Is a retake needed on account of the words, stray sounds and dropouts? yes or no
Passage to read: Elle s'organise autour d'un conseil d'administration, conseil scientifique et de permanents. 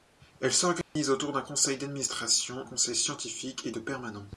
yes